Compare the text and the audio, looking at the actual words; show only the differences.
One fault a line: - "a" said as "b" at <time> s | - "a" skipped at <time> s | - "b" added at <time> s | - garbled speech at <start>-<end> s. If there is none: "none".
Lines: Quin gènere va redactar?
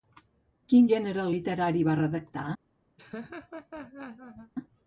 - "literari" added at 1.3 s